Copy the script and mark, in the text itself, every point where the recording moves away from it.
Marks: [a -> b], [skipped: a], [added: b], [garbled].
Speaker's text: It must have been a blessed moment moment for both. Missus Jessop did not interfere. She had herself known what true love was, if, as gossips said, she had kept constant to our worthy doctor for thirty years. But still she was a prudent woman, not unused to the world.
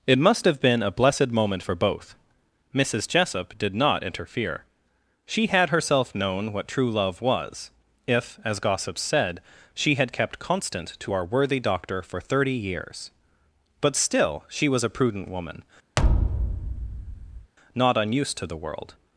It must have been a blessed moment [skipped: moment] for both. Missus Jessop did not interfere. She had herself known what true love was, if, as gossips said, she had kept constant to our worthy doctor for thirty years. But still she was a prudent woman, not unused to the world.